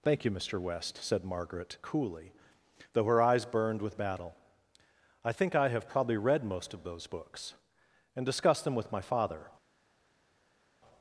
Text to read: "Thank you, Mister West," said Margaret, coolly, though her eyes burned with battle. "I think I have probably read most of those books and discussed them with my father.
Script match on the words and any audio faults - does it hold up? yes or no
yes